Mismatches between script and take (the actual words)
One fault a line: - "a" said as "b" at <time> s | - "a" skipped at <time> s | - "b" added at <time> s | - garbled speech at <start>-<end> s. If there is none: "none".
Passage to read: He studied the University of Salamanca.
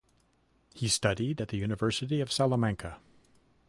- "at" added at 1.4 s